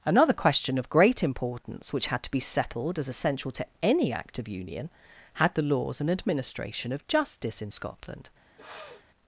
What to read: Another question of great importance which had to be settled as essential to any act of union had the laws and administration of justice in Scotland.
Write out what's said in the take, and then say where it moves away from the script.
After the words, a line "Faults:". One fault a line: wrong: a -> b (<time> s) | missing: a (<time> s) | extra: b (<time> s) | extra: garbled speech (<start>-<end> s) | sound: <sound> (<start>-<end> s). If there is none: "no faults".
Another question of great importance which had to be settled as essential to any act of union had the laws and administration of justice in Scotland.
Faults:
sound: sniff (8.6-9.1 s)